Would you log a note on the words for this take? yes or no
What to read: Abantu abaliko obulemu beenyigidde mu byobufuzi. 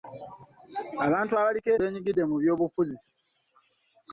yes